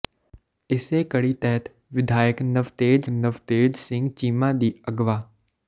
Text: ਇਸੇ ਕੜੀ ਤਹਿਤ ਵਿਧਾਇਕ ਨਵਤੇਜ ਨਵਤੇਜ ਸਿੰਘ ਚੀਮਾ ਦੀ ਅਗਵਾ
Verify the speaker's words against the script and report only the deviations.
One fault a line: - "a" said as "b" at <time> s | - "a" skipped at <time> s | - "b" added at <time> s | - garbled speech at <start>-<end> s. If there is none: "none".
none